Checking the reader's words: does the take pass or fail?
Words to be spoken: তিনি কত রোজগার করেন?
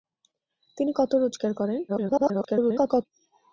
fail